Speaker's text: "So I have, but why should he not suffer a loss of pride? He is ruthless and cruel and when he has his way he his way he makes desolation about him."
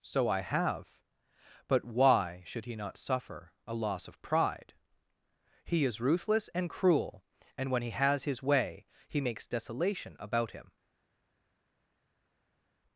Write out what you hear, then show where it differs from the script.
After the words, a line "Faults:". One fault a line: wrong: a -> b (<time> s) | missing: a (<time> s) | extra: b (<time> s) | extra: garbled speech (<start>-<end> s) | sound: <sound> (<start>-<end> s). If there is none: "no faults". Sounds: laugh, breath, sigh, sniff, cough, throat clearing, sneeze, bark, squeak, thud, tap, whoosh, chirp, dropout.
"So I have, but why should he not suffer a loss of pride? He is ruthless and cruel and when he has his way he makes desolation about him."
Faults:
missing: his way he (9.2 s)